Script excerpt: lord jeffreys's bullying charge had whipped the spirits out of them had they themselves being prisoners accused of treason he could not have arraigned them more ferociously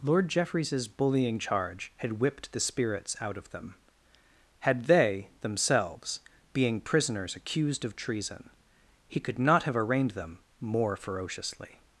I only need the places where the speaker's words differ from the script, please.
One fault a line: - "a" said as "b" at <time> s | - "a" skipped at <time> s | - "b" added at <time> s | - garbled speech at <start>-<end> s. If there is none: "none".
none